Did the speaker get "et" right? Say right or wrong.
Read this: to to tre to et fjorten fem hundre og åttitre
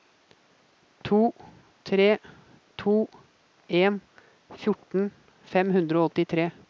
wrong